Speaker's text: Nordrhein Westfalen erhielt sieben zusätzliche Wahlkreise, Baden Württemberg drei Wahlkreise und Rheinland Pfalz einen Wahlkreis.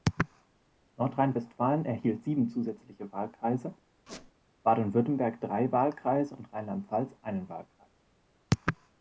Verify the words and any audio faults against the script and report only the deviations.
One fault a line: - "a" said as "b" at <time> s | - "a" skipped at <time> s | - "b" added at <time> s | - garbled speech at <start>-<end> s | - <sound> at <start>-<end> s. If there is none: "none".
- squeak at 4.1-4.3 s